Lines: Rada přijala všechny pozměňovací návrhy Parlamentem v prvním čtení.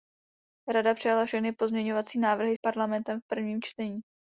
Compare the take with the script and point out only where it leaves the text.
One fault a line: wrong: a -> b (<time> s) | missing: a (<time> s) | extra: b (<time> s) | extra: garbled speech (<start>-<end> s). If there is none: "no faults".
no faults